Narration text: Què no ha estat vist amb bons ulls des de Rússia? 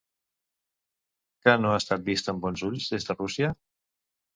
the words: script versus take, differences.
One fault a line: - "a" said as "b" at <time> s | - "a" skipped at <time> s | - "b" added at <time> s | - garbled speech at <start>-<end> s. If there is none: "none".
none